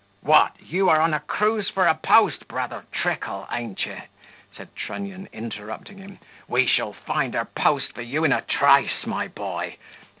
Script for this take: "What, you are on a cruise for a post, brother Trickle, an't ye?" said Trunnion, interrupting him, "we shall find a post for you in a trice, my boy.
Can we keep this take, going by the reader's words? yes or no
yes